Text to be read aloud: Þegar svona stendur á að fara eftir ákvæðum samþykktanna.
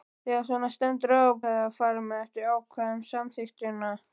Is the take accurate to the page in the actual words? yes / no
yes